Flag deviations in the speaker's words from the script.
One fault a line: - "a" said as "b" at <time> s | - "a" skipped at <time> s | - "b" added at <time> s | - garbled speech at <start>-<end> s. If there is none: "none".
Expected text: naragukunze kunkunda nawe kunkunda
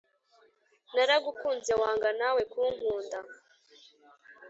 - "kunkunda" said as "wanga" at 1.8 s